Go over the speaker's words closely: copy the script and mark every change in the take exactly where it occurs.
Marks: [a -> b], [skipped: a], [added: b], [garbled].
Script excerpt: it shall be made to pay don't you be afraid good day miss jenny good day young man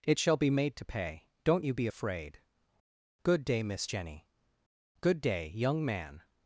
it shall be made to pay don't you be afraid good day miss jenny good day young man